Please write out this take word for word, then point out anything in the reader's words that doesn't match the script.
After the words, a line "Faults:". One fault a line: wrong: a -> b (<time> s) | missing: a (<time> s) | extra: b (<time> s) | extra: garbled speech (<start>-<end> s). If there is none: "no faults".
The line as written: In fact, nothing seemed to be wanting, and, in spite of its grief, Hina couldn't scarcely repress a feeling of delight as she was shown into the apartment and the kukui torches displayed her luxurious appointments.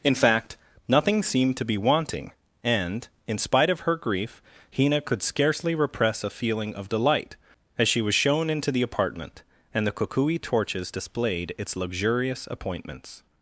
In fact, nothing seemed to be wanting, and, in spite of her grief, Hina could scarcely repress a feeling of delight as she was shown into the apartment and the kukui torches displayed its luxurious appointments.
Faults:
wrong: its -> her (3.8 s)
wrong: couldn't -> could (5.0 s)
wrong: her -> its (11.6 s)